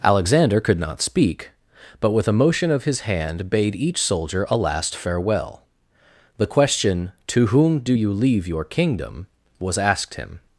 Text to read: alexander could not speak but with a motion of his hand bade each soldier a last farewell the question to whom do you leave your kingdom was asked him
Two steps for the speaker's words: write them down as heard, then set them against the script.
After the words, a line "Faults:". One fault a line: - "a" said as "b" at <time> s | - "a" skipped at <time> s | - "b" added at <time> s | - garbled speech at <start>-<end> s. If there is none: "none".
alexander could not speak but with a motion of his hand bade each soldier a last farewell the question to whom do you leave your kingdom was asked him
Faults:
none